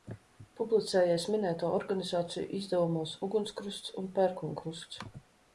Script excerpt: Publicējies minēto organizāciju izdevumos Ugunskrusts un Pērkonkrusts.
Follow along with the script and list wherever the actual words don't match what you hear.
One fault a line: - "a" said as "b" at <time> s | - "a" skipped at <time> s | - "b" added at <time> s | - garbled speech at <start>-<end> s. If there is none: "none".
none